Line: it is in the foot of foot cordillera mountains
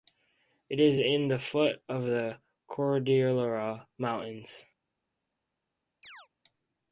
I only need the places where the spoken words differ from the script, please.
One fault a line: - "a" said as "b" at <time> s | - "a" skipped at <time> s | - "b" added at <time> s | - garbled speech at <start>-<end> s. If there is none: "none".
- "foot" said as "the" at 2.0 s